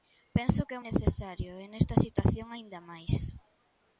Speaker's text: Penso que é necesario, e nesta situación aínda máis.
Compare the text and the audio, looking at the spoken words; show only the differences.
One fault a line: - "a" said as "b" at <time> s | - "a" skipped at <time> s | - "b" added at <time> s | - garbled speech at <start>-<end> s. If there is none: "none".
none